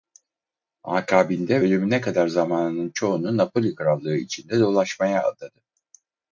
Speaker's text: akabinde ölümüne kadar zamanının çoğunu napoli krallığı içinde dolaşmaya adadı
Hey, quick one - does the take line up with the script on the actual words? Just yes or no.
yes